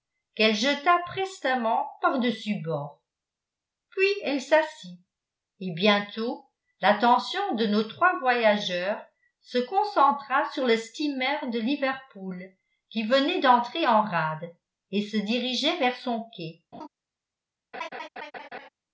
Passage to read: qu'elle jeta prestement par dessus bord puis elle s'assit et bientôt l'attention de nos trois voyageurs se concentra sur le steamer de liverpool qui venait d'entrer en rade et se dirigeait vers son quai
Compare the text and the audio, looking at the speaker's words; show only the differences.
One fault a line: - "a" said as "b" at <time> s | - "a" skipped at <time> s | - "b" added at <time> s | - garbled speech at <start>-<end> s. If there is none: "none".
none